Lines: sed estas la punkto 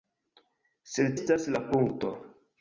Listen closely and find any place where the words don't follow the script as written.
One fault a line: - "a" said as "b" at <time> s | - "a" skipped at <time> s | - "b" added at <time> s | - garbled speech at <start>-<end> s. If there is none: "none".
none